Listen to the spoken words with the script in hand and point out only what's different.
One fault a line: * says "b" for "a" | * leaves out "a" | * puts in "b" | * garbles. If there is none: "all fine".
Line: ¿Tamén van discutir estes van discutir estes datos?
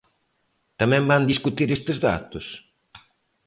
* leaves out "van discutir estes"